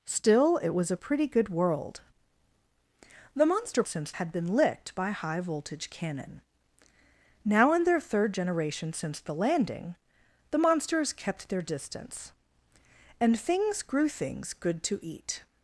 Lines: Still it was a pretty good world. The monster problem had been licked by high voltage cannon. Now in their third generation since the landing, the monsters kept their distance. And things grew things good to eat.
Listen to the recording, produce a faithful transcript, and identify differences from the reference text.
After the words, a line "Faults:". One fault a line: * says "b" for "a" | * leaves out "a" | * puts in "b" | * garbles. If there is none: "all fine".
Still it was a pretty good world. The monster since had been licked by high voltage cannon. Now in their third generation since the landing, the monsters kept their distance. And things grew things good to eat.
Faults:
* says "since" for "problem"